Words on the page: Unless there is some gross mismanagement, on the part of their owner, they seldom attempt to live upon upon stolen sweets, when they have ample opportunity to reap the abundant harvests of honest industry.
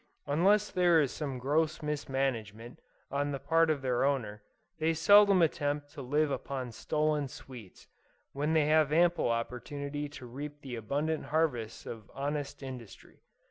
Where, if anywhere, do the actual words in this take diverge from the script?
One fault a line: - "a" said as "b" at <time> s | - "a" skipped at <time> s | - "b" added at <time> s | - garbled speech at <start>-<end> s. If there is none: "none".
- "upon" skipped at 6.7 s